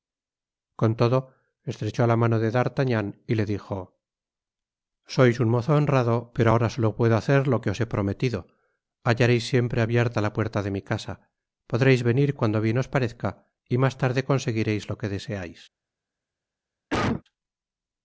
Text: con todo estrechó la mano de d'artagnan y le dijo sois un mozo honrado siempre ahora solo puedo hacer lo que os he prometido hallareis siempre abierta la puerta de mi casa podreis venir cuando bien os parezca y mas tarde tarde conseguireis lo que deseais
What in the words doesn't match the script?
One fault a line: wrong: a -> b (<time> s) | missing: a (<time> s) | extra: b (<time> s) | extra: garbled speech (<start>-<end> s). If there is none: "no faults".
wrong: siempre -> pero (6.3 s)
missing: tarde (14.2 s)